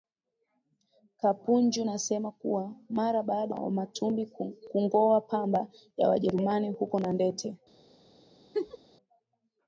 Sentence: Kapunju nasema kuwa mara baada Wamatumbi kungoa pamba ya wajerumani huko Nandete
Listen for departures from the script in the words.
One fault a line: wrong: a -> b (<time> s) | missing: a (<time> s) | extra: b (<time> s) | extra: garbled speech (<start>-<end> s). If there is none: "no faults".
no faults